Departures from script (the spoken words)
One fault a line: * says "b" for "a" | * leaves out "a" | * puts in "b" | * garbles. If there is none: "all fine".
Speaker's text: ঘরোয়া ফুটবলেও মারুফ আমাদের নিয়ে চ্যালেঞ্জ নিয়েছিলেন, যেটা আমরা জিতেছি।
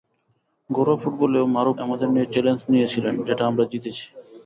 all fine